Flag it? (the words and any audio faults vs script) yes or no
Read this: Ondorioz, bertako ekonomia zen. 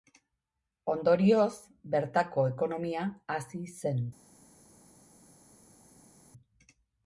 yes